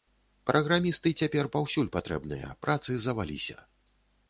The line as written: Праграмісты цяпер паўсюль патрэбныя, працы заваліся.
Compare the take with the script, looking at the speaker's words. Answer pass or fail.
pass